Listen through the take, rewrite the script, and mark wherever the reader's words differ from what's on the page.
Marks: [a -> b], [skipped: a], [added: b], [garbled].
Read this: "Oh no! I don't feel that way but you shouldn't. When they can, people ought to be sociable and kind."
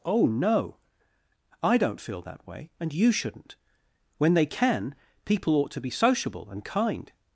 "Oh no! I don't feel that way [but -> and] you shouldn't. When they can, people ought to be sociable and kind."